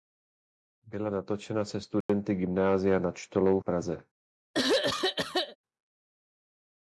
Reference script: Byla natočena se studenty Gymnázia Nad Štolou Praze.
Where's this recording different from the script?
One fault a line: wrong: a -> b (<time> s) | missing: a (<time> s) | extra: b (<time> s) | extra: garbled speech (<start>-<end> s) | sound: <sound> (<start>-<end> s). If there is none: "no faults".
sound: dropout (2.0-2.1 s)
sound: throat clearing (4.5-5.6 s)